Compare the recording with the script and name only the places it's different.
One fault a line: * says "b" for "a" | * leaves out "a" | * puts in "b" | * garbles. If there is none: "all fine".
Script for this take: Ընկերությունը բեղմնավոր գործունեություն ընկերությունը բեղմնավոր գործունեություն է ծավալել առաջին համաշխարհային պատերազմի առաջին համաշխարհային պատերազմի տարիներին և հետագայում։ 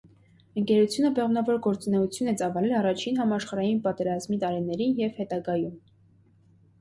* leaves out "ընկերությունը բեղմնավոր գործունեություն"
* leaves out "առաջին համաշխարհային պատերազմի"